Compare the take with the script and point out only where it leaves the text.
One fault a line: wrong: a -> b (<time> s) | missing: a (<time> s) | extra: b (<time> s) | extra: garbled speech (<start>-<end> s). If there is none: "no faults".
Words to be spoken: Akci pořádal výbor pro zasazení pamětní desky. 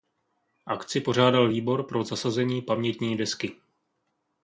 no faults